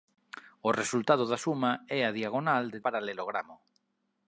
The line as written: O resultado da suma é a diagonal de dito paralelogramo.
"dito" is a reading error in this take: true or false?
true